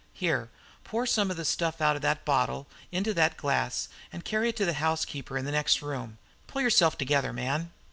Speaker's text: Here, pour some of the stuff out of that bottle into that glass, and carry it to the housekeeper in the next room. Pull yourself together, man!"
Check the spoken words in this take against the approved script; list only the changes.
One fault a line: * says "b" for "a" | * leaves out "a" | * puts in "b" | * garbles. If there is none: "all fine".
all fine